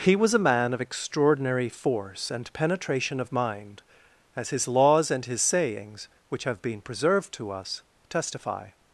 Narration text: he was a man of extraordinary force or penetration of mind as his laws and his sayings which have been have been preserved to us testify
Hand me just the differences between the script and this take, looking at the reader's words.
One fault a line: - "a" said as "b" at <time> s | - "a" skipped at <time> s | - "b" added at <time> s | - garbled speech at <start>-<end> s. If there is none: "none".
- "or" said as "and" at 2.3 s
- "have been" skipped at 6.8 s